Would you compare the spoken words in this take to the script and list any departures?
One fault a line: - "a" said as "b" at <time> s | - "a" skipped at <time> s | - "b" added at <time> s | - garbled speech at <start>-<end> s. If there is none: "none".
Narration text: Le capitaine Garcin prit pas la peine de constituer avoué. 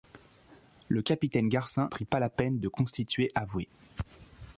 none